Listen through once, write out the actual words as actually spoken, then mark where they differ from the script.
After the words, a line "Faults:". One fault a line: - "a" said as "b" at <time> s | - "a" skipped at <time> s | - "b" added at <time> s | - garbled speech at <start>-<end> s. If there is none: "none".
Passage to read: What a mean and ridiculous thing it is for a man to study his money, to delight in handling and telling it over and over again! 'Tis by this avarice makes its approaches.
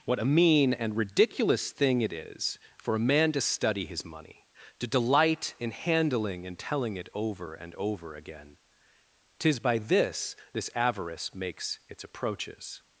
What a mean and ridiculous thing it is for a man to study his money, to delight in handling and telling it over and over again! 'Tis by this this avarice makes its approaches.
Faults:
- "this" added at 10.5 s